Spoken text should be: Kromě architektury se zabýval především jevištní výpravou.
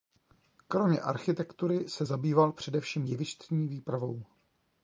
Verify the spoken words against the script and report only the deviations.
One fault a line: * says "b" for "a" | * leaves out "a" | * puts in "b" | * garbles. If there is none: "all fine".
all fine